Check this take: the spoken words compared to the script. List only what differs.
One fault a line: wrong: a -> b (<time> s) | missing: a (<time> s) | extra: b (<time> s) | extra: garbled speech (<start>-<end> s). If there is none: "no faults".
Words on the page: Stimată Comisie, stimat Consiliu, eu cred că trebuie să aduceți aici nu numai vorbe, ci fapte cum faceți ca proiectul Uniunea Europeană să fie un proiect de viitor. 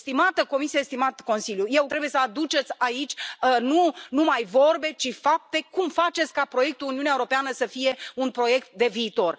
missing: cred că (1.9 s)